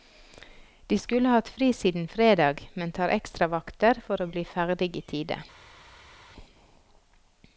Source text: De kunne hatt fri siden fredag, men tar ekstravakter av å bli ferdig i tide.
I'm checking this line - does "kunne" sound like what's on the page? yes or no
no